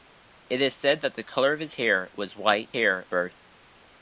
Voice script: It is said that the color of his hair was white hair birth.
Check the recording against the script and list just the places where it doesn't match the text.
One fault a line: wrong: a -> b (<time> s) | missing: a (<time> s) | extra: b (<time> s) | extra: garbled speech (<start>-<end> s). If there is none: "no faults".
no faults